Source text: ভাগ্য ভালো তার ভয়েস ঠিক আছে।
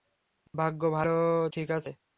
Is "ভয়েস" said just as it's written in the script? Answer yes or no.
no